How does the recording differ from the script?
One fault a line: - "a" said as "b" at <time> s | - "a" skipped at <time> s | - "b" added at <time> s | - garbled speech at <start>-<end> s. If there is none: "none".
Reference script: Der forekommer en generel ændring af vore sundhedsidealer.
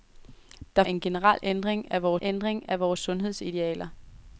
- "forekommer" skipped at 0.8 s
- "ændring af vore" added at 2.2 s